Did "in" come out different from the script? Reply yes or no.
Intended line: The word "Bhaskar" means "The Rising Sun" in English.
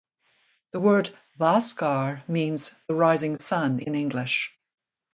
no